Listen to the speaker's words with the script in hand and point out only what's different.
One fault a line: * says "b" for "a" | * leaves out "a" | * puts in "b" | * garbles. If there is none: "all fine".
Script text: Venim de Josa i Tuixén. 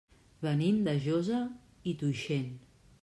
all fine